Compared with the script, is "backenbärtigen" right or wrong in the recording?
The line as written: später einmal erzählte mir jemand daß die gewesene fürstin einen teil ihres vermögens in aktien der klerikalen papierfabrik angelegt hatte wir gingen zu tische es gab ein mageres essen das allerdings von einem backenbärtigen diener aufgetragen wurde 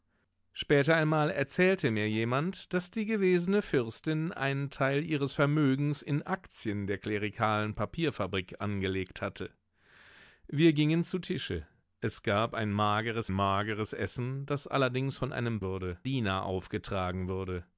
wrong